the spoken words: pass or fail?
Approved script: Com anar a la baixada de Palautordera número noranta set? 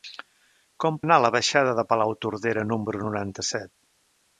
pass